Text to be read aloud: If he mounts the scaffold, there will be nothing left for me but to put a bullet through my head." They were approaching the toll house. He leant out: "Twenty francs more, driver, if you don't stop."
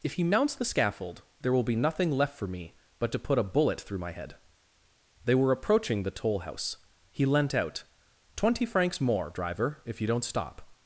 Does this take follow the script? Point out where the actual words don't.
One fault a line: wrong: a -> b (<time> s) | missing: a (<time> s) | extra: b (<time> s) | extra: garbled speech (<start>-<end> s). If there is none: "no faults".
no faults